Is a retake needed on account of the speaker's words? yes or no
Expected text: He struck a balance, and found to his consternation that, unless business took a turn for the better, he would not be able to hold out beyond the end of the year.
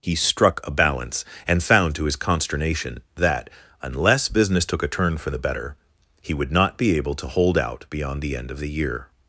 no